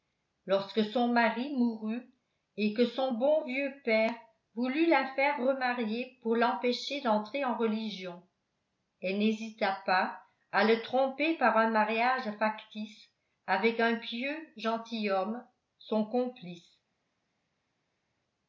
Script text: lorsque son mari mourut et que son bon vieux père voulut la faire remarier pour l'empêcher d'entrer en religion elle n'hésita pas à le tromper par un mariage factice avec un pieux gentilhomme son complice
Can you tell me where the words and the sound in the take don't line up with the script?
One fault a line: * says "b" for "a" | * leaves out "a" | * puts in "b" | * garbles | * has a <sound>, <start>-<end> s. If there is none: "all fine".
all fine